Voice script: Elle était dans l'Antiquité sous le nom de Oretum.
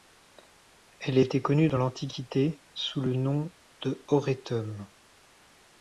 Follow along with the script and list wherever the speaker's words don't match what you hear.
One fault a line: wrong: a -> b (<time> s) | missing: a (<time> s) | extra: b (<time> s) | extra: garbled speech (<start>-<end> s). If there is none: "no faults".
extra: connue (1.4 s)